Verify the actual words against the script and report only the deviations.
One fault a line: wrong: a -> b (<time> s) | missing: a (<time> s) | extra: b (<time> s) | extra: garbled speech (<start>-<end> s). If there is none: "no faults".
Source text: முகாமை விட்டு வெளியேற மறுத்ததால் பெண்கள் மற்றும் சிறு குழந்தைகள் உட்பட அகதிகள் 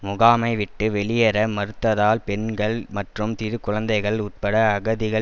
no faults